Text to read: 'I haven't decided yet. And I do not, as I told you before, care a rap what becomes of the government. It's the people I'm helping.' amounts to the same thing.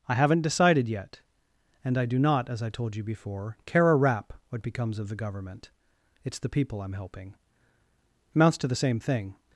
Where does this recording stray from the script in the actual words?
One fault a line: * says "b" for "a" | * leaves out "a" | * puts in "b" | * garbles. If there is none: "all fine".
all fine